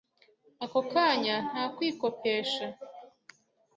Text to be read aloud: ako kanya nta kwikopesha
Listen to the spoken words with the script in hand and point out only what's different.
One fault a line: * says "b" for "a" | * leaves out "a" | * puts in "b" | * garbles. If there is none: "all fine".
all fine